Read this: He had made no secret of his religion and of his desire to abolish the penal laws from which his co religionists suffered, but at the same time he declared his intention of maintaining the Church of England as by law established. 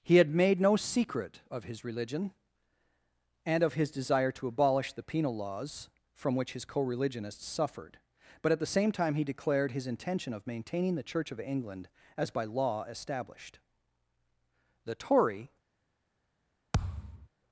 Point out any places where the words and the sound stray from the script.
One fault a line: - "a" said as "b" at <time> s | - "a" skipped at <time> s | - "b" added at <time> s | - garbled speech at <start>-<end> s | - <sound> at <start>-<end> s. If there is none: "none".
- "The Tory" added at 14.8 s
- thud at 16.7-17.3 s